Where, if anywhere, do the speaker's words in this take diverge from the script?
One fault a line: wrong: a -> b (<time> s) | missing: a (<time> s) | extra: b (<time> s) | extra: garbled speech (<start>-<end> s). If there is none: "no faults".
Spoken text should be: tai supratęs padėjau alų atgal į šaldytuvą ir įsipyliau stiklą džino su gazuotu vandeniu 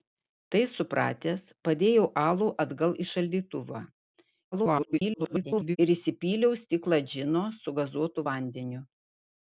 extra: garbled speech (4.5-5.8 s)